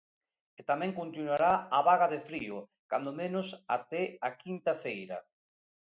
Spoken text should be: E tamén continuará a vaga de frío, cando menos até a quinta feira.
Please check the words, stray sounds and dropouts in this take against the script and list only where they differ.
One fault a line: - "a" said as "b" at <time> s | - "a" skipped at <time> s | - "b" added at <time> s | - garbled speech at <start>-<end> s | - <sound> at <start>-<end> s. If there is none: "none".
none